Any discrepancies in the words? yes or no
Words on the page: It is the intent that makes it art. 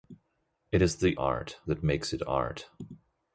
yes